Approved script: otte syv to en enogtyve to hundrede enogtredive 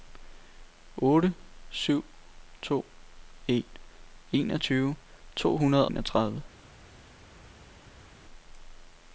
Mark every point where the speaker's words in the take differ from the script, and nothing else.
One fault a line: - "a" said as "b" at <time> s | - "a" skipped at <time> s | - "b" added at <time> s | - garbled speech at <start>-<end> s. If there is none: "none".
none